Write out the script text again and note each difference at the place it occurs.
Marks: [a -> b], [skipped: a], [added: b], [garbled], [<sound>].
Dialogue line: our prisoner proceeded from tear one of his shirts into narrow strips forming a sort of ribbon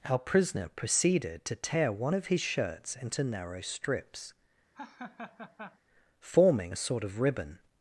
our prisoner proceeded [from -> to] tear one of his shirts into narrow strips [laugh] forming a sort of ribbon